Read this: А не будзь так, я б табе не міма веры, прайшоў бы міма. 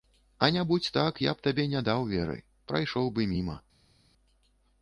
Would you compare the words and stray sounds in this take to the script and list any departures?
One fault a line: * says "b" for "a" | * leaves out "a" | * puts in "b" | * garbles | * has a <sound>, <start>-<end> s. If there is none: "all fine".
* says "даў" for "міма"